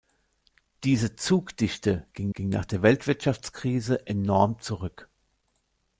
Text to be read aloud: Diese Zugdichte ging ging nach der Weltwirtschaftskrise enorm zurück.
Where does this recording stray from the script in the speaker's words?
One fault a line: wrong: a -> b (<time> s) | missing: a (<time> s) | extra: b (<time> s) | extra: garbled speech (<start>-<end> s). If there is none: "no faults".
no faults